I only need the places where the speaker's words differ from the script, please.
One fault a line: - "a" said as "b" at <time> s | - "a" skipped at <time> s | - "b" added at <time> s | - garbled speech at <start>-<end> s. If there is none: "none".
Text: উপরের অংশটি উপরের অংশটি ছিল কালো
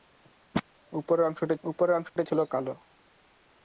none